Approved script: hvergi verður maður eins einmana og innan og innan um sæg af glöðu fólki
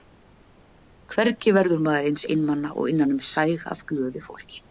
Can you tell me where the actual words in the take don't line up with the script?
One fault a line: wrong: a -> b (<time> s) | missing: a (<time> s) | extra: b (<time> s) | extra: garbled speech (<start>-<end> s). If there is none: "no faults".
missing: og innan (3.1 s)